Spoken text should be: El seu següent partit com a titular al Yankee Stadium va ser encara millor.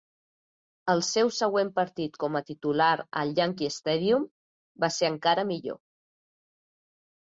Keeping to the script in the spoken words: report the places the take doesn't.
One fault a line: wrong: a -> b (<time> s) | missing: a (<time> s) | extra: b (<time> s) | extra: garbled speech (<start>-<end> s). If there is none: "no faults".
no faults